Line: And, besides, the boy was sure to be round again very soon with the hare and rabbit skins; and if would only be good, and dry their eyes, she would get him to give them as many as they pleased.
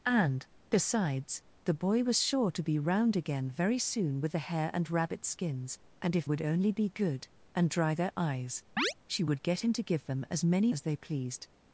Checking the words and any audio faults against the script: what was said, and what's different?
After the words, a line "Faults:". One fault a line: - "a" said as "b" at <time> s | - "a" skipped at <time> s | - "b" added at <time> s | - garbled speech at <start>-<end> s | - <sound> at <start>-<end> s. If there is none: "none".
And, besides, the boy was sure to be round again very soon with the hare and rabbit skins; and if would only be good, and dry their eyes, she would get him to give them as many as they pleased.
Faults:
- chirp at 8.8-8.9 s